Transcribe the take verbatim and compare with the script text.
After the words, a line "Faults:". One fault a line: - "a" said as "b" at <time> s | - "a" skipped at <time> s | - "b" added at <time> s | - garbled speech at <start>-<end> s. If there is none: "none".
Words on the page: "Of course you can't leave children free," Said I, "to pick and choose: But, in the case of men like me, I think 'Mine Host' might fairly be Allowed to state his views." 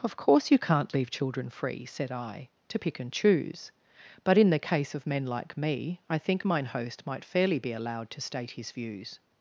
"Of course you can't leave children free," Said I, "to pick and choose: But, in the case of men like me, I think 'Mine Host' might fairly be Allowed to state his views."
Faults:
none